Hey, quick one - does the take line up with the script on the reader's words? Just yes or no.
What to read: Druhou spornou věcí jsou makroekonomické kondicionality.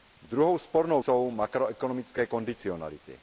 no